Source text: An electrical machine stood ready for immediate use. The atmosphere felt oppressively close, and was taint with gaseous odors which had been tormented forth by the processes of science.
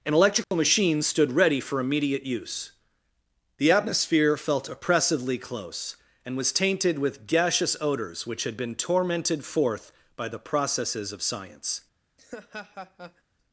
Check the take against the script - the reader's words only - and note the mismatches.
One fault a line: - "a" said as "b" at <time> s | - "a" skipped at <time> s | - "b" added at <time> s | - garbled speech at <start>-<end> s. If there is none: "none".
- "taint" said as "tainted" at 6.5 s